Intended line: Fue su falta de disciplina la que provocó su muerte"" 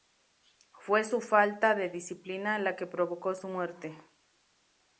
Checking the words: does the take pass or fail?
pass